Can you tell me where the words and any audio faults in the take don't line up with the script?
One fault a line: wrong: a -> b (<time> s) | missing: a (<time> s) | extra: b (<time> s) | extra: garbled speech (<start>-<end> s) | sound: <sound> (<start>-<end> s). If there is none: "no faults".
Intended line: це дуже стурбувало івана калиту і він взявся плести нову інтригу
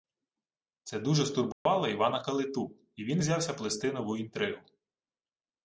sound: dropout (1.5-1.7 s)